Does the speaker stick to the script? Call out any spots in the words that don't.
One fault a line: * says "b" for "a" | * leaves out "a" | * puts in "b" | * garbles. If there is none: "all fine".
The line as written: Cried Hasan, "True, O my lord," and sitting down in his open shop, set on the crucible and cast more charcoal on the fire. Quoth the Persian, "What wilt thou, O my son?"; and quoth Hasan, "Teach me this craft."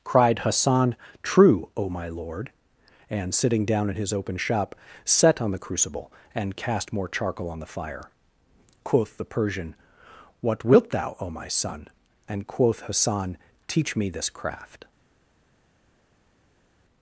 all fine